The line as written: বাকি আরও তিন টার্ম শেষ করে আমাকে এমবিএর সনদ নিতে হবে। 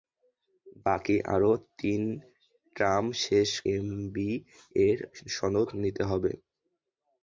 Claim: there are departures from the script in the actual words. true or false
true